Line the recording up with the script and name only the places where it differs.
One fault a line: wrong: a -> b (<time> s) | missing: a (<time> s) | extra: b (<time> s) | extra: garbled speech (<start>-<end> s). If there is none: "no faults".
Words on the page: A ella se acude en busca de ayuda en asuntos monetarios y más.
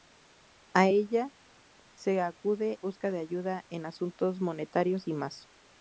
missing: en (2.8 s)